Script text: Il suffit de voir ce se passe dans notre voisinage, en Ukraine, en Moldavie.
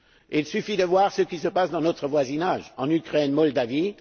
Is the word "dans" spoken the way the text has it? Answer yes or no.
yes